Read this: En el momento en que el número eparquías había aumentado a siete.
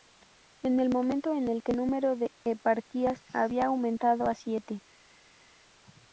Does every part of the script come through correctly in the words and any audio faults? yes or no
no